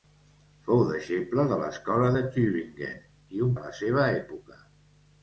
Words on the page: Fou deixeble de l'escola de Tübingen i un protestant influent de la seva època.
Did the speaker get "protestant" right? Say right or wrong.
wrong